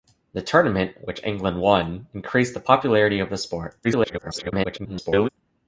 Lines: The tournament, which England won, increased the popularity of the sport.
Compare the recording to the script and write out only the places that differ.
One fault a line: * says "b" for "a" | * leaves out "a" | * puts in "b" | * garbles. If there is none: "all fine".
* garbles